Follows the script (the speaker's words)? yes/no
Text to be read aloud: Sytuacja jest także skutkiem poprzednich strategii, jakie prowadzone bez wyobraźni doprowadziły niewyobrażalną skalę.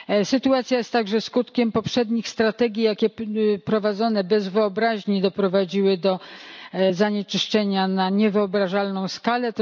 no